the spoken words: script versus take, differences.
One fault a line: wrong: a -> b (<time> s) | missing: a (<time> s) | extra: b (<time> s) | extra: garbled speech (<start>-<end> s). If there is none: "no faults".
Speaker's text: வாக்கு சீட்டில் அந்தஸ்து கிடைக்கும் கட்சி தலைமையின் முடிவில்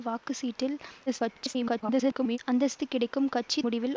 extra: garbled speech (1.1-2.4 s)
missing: தலைமையின் (3.6 s)